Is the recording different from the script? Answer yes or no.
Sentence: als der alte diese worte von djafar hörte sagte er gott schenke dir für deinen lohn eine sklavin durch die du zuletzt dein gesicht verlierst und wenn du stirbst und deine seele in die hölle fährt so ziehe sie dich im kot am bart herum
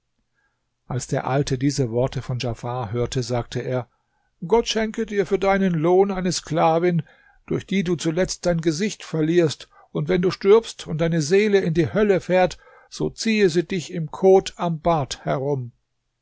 no